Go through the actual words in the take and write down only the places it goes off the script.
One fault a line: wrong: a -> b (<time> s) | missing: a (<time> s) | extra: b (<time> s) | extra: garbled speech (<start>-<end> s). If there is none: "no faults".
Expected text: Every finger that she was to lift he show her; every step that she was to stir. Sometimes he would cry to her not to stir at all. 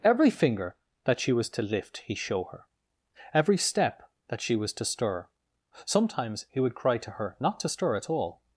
no faults